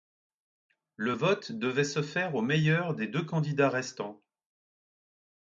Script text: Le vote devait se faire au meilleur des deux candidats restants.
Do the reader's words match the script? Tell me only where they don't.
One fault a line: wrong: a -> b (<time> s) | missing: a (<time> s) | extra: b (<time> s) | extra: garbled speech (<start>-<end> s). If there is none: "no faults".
no faults